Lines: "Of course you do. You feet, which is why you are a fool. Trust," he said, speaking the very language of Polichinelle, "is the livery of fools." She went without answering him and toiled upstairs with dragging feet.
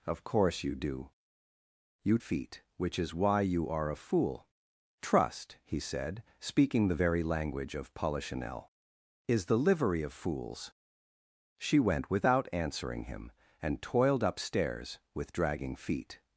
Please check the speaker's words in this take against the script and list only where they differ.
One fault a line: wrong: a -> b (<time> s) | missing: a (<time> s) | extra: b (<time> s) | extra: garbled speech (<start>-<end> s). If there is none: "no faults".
no faults